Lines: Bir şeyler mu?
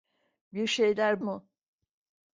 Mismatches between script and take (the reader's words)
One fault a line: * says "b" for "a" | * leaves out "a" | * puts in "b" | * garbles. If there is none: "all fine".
all fine